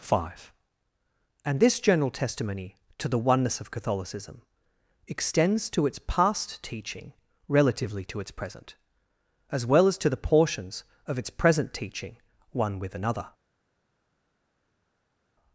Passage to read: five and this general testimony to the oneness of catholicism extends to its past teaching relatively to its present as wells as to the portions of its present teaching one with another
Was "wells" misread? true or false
true